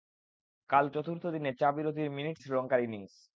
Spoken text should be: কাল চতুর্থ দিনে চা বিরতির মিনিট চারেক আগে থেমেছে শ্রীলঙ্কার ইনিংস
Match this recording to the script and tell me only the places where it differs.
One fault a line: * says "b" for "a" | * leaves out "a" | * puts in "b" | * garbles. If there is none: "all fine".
* leaves out "চারেক আগে থেমেছে"